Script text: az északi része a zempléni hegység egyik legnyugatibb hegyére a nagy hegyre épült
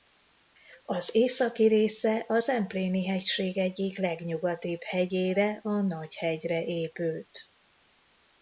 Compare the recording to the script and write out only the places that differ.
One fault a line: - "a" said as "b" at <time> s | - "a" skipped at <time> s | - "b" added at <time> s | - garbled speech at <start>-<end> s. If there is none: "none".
none